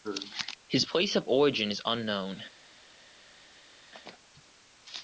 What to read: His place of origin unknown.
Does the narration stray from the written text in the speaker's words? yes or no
yes